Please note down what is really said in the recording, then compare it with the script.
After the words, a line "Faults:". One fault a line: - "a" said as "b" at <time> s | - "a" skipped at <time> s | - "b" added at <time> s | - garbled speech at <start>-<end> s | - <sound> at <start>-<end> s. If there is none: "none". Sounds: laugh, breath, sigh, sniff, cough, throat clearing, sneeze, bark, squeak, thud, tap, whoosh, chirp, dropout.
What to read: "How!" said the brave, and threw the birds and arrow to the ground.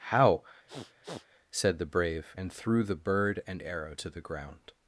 "How!" said the brave, and threw the bird and arrow to the ground.
Faults:
- sniff at 0.7-1.3 s
- "birds" said as "bird" at 3.0 s